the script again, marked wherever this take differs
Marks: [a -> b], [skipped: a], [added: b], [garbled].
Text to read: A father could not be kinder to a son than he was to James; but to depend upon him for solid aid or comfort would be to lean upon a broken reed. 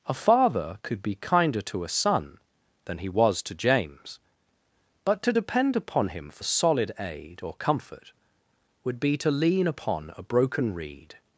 A father could [skipped: not] be kinder to a son than he was to James; but to depend upon him for solid aid or comfort would be to lean upon a broken reed.